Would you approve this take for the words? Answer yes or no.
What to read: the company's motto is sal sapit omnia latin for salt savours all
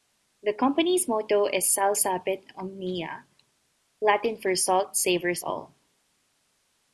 yes